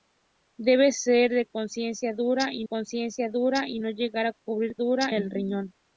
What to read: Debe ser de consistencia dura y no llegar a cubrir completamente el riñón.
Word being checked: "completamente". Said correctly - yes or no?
no